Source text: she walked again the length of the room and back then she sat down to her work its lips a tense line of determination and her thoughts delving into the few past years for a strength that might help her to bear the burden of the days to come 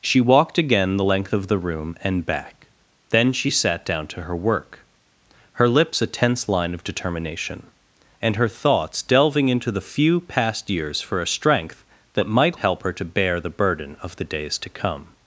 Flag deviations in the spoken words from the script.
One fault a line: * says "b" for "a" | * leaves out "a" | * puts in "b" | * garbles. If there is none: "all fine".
* says "her" for "its"